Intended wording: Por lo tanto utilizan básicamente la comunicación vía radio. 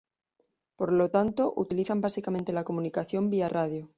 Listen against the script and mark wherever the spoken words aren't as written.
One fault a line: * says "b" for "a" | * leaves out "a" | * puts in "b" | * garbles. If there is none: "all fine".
all fine